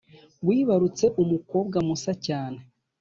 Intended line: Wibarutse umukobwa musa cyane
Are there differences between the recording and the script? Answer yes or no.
no